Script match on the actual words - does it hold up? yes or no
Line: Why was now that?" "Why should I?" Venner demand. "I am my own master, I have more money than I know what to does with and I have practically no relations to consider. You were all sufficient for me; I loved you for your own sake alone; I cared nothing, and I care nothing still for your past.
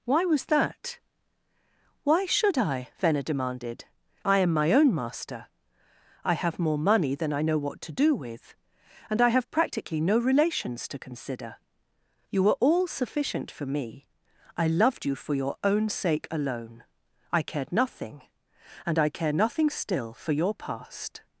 no